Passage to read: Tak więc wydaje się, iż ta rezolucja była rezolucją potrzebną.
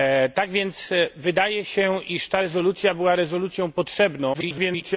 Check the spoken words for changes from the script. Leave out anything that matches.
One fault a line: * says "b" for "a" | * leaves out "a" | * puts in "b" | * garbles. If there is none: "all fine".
* garbles